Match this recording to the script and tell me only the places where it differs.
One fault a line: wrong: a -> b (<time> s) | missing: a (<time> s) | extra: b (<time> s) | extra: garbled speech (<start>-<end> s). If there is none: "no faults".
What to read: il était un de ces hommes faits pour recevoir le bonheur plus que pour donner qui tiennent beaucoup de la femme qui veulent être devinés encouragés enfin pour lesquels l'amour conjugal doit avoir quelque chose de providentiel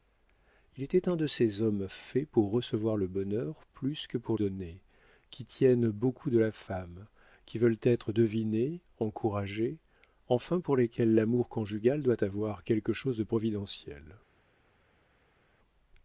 no faults